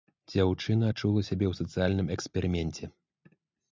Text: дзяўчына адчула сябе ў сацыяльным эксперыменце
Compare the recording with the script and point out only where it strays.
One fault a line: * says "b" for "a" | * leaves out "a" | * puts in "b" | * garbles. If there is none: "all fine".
all fine